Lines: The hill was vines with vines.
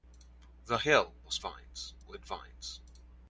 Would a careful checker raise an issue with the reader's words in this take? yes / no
no